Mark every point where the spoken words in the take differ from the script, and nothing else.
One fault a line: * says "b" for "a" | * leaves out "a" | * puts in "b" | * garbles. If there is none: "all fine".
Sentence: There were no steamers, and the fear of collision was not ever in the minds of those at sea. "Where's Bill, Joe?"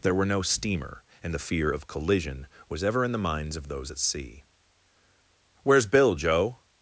* says "steamer" for "steamers"
* leaves out "not"